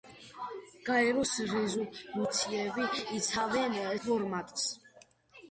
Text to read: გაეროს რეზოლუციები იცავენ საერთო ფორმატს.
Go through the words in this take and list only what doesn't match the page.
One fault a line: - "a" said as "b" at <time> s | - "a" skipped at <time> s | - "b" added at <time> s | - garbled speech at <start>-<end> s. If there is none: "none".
- "საერთო" skipped at 3.8 s